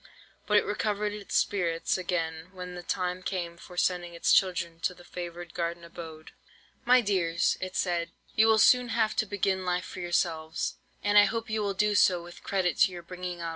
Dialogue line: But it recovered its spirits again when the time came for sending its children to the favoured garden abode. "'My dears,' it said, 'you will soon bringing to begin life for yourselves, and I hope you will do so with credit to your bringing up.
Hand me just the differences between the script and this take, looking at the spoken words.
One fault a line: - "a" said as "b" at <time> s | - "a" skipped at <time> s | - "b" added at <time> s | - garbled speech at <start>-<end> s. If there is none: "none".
- "bringing" said as "have" at 8.9 s